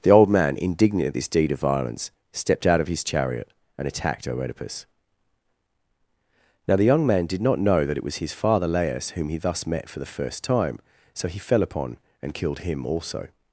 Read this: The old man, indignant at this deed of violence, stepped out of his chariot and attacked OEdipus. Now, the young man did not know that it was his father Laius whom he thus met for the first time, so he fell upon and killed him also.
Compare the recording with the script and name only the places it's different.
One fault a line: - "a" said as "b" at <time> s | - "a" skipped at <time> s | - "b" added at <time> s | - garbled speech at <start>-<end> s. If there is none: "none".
none